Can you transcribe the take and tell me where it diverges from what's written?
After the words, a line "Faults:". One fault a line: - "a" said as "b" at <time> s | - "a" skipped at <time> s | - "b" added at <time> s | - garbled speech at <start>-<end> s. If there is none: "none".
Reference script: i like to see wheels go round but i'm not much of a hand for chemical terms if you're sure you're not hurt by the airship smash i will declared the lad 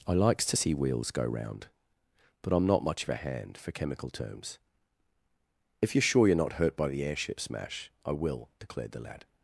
i likes to see wheels go round but i'm not much of a hand for chemical terms if you're sure you're not hurt by the airship smash i will declared the lad
Faults:
- "like" said as "likes" at 0.1 s